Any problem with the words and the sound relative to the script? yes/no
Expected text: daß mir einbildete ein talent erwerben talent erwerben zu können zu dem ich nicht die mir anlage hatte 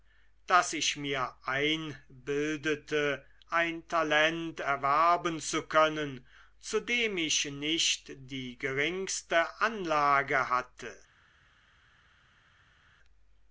yes